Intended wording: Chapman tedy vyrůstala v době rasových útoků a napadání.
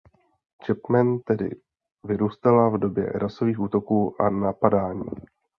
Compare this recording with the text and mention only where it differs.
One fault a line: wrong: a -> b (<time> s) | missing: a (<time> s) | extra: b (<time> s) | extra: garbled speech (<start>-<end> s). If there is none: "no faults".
no faults